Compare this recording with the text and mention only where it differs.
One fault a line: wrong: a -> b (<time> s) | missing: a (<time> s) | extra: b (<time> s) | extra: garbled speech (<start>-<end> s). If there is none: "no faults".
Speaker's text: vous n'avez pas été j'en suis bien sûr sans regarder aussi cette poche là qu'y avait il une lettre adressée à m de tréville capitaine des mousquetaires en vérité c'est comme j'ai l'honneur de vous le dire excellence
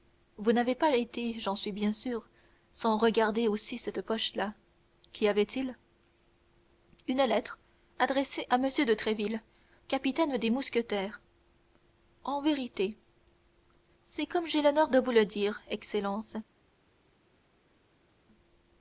no faults